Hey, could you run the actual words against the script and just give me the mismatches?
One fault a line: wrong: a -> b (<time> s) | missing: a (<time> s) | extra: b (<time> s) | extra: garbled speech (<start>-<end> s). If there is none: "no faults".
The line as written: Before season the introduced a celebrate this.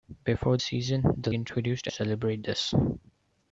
no faults